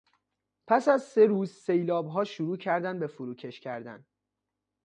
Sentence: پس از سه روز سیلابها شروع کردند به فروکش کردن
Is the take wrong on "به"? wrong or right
right